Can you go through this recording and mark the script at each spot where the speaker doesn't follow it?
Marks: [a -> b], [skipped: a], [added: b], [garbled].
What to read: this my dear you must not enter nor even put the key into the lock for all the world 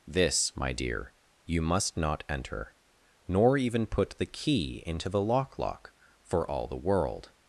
this my dear you must not enter nor even put the key into the lock [added: lock] for all the world